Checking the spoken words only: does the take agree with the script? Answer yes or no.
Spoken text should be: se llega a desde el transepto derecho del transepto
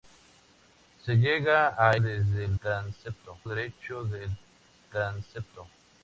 yes